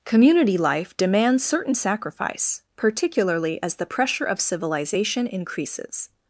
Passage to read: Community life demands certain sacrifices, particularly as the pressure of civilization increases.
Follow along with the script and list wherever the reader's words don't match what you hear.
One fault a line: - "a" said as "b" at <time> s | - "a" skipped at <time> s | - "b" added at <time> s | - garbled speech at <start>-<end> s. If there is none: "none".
- "sacrifices" said as "sacrifice" at 1.7 s